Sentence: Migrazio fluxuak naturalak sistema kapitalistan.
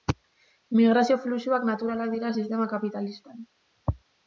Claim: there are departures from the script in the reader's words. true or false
true